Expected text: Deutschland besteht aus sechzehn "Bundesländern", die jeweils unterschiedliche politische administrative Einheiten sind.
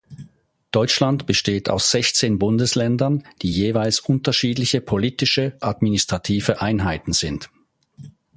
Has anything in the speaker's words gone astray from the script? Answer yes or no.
no